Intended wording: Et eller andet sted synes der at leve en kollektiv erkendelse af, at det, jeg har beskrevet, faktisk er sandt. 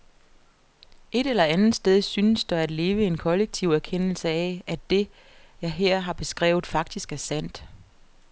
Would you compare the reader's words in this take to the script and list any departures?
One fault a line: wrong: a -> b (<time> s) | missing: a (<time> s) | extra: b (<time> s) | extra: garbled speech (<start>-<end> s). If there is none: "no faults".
extra: her (5.7 s)